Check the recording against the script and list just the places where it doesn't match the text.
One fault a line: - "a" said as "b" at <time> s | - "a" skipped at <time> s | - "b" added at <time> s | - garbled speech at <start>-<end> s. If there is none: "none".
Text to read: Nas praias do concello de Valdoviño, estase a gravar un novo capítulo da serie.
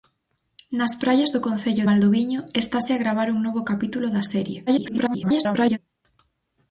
- "de" skipped at 1.9 s
- garbled speech at 4.7-5.8 s